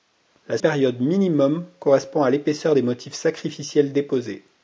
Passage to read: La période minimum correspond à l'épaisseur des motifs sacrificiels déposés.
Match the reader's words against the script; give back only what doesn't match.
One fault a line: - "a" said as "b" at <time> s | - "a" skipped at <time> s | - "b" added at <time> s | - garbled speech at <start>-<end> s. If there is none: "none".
none